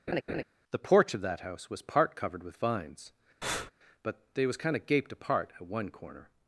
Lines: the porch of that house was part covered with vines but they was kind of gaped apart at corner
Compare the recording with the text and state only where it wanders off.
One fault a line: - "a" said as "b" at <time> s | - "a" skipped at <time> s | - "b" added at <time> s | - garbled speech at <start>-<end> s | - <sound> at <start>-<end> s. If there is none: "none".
- laugh at 0.1-0.4 s
- breath at 3.4-3.7 s
- "one" added at 5.7 s